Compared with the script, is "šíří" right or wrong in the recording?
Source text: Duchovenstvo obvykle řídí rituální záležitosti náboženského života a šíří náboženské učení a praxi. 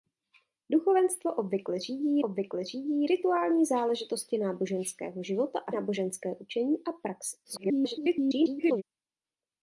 wrong